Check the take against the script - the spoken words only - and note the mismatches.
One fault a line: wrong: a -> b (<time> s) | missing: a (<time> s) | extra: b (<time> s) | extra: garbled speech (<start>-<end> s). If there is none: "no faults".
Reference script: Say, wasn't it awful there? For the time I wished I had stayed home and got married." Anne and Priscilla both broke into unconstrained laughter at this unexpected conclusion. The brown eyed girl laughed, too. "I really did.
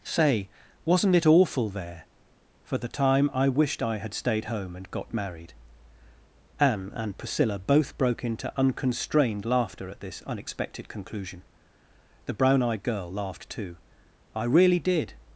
no faults